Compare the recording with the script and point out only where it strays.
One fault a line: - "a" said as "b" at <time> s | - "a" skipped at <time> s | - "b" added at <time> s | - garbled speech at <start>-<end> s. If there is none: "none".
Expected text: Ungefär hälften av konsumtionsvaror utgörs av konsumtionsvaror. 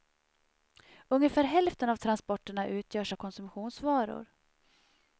- "konsumtionsvaror" said as "transporterna" at 1.9 s